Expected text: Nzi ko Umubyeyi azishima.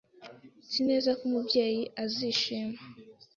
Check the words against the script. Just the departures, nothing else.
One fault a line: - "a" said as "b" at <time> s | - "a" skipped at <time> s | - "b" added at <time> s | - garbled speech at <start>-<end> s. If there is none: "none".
- "neza" added at 0.9 s